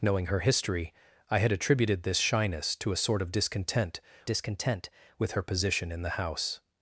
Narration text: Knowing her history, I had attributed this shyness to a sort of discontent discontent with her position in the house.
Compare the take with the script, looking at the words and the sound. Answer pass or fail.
pass